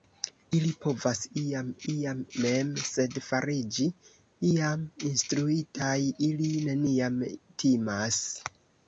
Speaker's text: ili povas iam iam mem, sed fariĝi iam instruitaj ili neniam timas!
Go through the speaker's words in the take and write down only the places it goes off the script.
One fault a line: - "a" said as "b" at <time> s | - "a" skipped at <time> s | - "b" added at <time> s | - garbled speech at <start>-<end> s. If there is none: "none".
none